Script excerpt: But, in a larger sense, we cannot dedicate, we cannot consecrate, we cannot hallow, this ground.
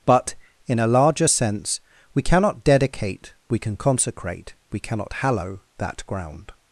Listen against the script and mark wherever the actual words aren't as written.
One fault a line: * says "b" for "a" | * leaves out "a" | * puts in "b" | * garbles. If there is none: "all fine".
* says "can" for "cannot"
* says "that" for "this"